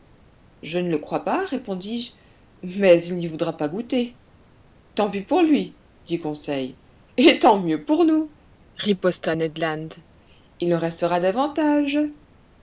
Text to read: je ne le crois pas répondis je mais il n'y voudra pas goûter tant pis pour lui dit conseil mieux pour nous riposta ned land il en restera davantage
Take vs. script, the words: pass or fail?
fail